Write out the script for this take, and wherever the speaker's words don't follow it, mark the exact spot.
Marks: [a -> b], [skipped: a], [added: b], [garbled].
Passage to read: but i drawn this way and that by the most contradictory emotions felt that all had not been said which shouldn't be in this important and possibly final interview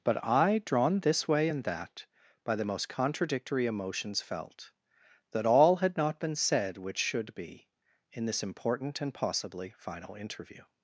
but i drawn this way and that by the most contradictory emotions felt that all had not been said which [shouldn't -> should] be in this important and possibly final interview